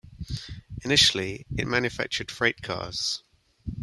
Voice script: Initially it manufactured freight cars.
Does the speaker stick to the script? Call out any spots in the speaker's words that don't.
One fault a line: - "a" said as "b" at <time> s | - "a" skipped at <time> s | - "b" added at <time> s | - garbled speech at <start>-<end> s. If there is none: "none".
none